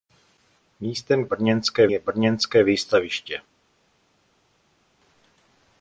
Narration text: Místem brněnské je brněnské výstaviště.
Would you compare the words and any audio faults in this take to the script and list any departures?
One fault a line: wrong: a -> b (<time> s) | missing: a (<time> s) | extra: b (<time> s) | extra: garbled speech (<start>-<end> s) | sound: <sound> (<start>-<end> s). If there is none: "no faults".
no faults